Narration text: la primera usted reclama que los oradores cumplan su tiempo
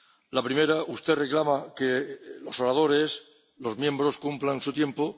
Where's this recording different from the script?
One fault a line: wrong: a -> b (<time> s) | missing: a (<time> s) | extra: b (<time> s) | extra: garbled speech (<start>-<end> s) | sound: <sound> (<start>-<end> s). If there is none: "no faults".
extra: los miembros (3.6 s)